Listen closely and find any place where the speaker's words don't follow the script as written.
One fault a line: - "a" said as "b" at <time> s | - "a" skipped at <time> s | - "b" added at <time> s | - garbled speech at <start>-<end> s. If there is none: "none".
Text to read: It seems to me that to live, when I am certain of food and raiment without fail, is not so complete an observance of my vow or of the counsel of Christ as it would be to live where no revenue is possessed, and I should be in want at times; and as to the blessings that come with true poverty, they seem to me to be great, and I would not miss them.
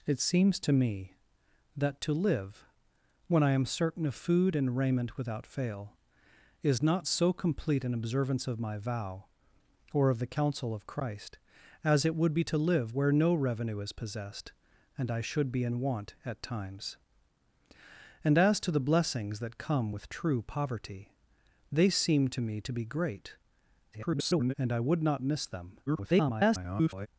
- garbled speech at 23.9-24.5 s
- garbled speech at 25.9-27.1 s